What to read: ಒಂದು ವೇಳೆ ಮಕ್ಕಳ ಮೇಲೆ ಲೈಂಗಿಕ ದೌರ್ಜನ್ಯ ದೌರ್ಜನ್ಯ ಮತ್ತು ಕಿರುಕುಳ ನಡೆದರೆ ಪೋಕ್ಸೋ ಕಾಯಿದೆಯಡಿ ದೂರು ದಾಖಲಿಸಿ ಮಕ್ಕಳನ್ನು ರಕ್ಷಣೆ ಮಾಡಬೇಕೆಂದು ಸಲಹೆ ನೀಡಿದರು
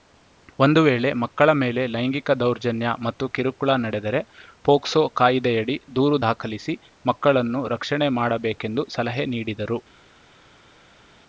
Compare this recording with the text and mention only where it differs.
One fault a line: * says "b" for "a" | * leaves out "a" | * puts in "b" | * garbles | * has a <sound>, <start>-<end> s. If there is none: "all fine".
* leaves out "ದೌರ್ಜನ್ಯ"